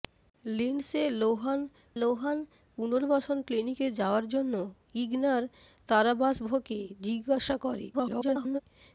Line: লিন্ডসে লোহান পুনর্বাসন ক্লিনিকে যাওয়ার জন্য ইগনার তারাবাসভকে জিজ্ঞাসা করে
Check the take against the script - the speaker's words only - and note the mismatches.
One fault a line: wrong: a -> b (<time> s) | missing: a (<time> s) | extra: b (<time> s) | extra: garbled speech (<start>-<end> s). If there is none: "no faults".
extra: লোহান (2.0 s)
extra: garbled speech (7.9-8.6 s)